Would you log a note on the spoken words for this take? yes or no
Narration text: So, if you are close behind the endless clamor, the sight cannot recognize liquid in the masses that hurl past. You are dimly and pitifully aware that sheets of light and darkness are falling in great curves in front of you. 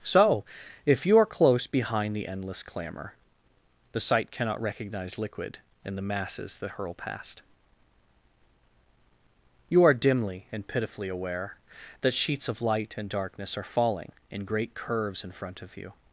no